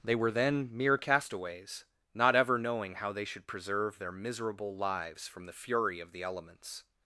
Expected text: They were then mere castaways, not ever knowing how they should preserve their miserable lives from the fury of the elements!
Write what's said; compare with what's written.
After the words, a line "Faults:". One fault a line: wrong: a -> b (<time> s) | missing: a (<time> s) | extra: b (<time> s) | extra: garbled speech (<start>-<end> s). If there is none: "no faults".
They were then mere castaways, not ever knowing how they should preserve their miserable lives from the fury of the elements!
Faults:
no faults